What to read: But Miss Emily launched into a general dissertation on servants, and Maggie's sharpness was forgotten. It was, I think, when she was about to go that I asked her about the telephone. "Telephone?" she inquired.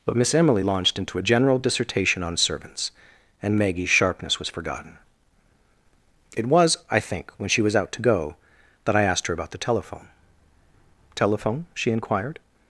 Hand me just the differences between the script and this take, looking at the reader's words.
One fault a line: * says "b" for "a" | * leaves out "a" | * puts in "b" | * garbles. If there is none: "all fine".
* says "out" for "about"